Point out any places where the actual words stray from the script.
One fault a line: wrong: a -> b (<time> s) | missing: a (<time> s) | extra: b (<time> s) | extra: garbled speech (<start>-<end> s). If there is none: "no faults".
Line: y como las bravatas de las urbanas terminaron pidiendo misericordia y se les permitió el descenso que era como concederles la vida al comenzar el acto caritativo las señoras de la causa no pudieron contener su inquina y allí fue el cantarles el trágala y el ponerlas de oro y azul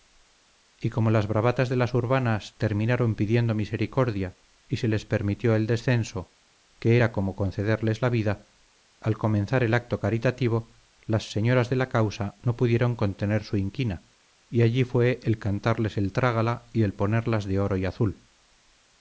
no faults